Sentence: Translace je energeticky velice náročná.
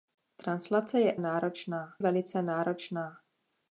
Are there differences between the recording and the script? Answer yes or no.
yes